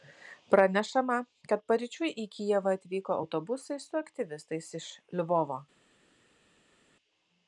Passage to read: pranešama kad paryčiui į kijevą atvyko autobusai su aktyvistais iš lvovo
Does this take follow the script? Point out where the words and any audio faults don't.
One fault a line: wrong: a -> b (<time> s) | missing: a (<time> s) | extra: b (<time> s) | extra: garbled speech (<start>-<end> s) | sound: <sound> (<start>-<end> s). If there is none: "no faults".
no faults